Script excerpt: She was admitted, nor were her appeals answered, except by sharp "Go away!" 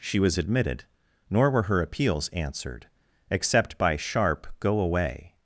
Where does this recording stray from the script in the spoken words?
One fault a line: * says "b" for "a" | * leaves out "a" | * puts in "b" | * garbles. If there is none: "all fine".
all fine